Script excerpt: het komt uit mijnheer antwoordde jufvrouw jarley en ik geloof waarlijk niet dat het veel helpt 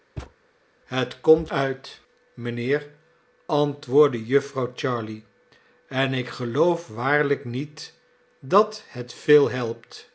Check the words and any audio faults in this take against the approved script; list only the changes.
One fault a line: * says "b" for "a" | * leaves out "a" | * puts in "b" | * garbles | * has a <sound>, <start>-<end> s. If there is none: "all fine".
* has a thud, 0.2-0.3 s